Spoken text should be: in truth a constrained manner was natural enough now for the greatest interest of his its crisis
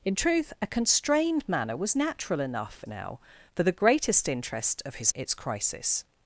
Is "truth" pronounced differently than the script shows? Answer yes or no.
no